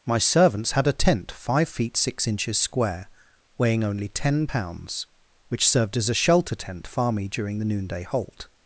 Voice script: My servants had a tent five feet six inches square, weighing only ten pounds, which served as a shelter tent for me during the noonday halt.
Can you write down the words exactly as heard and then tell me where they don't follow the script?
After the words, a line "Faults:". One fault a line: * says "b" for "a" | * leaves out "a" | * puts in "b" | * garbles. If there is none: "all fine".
My servants had a tent five feet six inches square, weighing only ten pounds, which served as a shelter tent far me during the noonday halt.
Faults:
* says "far" for "for"